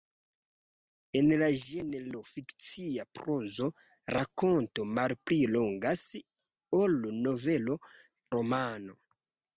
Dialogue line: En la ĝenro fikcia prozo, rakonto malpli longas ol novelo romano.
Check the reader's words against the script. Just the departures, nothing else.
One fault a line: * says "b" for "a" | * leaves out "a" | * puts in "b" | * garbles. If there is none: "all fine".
all fine